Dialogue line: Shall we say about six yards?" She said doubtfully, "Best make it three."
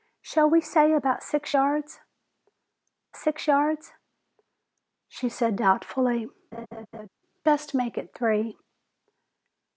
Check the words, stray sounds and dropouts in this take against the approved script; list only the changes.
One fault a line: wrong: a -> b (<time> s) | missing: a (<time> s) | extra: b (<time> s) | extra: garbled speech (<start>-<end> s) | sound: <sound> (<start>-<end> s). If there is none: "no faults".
extra: six yards (3.1 s)
sound: laugh (6.5-7.1 s)